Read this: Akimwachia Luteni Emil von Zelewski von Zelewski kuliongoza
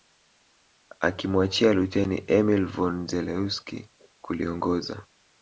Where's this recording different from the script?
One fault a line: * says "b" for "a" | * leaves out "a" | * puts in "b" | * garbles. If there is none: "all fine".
* leaves out "von Zelewski"